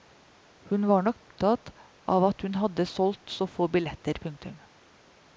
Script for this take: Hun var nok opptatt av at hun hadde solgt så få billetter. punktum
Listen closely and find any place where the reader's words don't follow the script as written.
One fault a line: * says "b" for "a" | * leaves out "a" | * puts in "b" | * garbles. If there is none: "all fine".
all fine